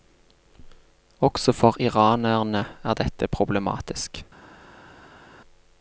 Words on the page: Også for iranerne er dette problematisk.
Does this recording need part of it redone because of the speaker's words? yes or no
no